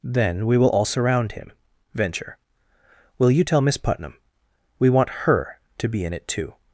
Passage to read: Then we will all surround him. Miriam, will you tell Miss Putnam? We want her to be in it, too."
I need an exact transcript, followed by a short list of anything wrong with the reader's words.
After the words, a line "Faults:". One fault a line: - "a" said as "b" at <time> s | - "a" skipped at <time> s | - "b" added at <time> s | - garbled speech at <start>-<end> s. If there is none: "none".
Then we will all surround him. Venture, will you tell Miss Putnam? We want her to be in it, too."
Faults:
- "Miriam" said as "Venture" at 1.9 s